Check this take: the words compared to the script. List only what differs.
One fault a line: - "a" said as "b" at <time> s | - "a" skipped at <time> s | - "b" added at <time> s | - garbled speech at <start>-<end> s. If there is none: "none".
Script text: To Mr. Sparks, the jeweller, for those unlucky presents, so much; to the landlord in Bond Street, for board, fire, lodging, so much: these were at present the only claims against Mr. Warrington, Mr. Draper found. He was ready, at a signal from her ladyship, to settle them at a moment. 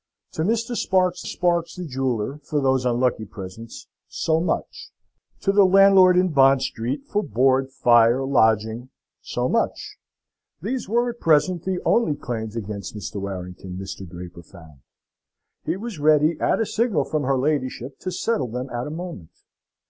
- "sparks" added at 1.2 s